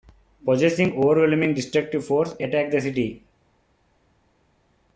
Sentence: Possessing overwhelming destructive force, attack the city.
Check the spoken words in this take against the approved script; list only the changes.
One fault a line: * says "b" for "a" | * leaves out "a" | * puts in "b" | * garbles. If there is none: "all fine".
all fine